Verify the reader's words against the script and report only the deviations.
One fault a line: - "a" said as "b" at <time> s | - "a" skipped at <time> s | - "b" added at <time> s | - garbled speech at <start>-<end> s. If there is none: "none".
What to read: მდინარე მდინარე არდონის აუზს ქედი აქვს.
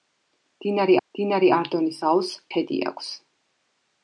none